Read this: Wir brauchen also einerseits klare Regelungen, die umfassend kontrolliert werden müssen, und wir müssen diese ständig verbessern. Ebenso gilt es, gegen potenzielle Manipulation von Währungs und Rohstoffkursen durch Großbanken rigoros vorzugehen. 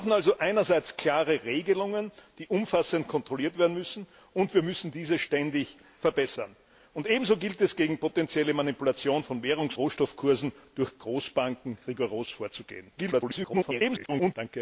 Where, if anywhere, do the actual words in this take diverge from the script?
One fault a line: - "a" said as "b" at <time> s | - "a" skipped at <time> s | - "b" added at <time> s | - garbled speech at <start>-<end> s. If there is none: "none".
- "und" skipped at 9.8 s
- garbled speech at 13.0-14.3 s